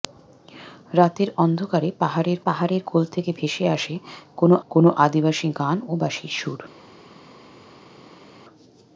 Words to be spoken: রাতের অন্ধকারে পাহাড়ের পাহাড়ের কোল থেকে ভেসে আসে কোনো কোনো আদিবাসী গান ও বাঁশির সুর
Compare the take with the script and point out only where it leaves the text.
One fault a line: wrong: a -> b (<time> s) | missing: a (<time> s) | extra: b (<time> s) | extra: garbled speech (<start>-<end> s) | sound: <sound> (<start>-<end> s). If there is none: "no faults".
no faults